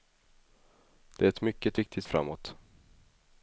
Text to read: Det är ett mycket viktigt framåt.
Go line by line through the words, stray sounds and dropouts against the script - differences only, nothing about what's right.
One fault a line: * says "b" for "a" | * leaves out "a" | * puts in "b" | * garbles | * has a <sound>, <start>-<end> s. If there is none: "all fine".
all fine